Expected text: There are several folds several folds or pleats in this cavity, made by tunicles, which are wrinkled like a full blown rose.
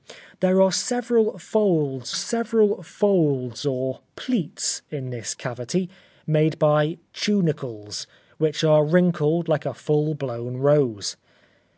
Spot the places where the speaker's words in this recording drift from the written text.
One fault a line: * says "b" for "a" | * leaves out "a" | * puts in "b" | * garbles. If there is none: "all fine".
all fine